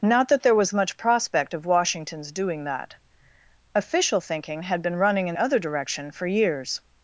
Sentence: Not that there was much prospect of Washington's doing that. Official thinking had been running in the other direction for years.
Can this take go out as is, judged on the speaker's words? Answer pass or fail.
fail